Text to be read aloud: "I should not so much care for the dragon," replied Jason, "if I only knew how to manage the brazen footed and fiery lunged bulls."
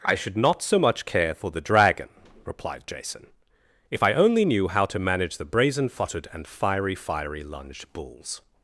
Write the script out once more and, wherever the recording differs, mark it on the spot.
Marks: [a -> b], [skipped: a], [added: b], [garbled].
"I should not so much care for the dragon," replied Jason, "if I only knew how to manage the brazen footed and fiery [added: fiery] lunged bulls."